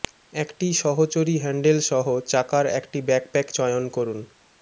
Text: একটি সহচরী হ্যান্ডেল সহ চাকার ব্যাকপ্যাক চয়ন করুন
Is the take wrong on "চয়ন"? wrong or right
right